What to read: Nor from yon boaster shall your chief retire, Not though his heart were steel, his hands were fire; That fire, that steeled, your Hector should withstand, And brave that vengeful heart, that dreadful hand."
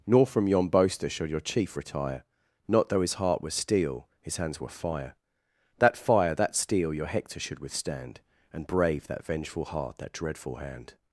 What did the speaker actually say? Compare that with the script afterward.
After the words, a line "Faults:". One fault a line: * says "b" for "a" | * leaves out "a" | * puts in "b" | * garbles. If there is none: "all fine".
Nor from yon boaster shall your chief retire, Not though his heart were steel, his hands were fire; That fire, that steel, your Hector should withstand, And brave that vengeful heart, that dreadful hand."
Faults:
* says "steel" for "steeled"